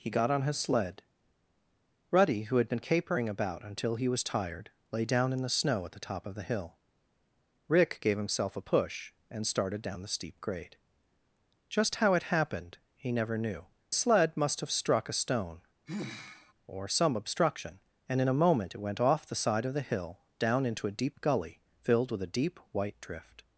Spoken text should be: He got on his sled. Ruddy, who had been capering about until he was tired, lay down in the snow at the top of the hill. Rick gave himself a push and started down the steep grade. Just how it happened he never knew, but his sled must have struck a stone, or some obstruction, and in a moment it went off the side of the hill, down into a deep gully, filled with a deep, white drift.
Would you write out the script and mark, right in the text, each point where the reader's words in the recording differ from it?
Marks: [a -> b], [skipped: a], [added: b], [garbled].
He got on his sled. Ruddy, who had been capering about until he was tired, lay down in the snow at the top of the hill. Rick gave himself a push and started down the steep grade. Just how it happened he never knew, [skipped: but his] sled must have struck a stone, or some obstruction, and in a moment it went off the side of the hill, down into a deep gully, filled with a deep, white drift.